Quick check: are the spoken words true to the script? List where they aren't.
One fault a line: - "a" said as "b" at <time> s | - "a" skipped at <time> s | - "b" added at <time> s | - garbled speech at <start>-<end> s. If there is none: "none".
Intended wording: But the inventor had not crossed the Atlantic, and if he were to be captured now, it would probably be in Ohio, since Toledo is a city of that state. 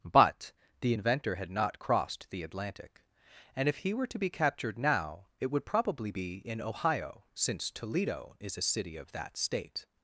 none